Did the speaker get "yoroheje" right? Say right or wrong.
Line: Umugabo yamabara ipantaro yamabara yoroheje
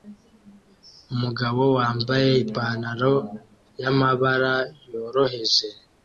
right